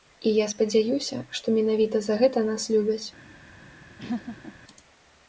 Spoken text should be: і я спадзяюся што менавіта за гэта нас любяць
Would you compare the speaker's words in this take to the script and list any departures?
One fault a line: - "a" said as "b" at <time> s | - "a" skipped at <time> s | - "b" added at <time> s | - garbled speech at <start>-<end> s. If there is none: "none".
none